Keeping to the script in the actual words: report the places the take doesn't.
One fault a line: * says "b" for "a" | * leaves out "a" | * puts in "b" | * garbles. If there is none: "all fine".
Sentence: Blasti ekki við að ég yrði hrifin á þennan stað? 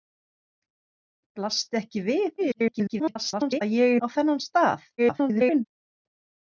* garbles
* leaves out "yrði hrifin"
* garbles